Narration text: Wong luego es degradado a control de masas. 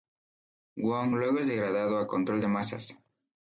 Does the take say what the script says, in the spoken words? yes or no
yes